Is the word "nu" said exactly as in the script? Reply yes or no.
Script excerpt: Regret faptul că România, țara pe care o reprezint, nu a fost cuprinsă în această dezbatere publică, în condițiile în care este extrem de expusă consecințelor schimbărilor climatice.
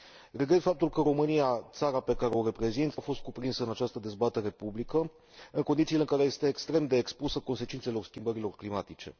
no